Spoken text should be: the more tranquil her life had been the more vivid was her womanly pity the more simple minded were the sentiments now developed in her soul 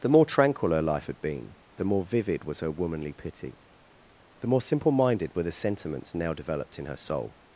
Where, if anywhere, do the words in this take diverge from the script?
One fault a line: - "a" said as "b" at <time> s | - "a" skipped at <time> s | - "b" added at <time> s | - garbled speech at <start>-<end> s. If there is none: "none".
none